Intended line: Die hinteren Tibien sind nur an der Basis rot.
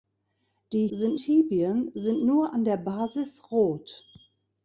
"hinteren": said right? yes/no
no